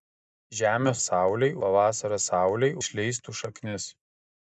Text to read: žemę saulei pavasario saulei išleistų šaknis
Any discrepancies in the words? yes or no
no